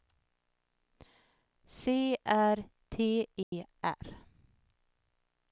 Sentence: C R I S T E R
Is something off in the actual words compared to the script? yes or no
yes